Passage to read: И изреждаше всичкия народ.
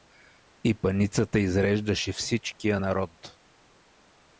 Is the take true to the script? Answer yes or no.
no